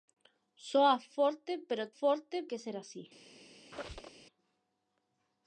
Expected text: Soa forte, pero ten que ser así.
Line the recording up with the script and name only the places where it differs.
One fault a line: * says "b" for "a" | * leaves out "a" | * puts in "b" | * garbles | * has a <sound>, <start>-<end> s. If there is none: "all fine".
* says "forte" for "ten"
* has a squeak, 3.7-4.2 s